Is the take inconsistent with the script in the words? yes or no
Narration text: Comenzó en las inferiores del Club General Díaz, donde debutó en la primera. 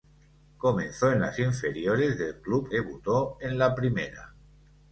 yes